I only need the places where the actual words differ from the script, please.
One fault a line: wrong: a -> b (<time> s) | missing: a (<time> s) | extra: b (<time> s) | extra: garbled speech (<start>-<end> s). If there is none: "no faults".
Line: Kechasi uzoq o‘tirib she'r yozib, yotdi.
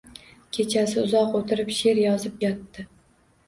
no faults